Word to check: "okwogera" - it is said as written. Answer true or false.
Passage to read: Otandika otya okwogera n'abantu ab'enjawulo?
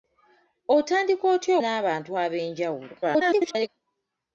false